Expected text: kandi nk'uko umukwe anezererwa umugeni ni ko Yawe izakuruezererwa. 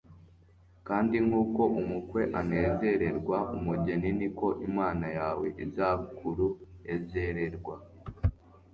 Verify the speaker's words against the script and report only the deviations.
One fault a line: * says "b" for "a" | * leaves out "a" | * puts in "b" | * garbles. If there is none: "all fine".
* puts in "Imana"